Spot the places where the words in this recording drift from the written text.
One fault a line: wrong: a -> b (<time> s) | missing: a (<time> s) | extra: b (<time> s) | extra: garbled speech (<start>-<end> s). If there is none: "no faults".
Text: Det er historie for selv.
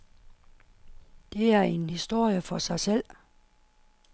extra: en (1.6 s)
extra: sig (2.6 s)